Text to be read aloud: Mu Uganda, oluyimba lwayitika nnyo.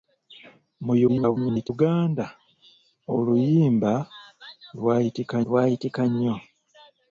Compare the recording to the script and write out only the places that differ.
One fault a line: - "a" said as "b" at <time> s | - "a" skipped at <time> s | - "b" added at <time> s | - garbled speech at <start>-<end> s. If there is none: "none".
- garbled speech at 1.1-1.7 s
- "lwayitika" added at 5.4 s